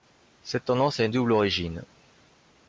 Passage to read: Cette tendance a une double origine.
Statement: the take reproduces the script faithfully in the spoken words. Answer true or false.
true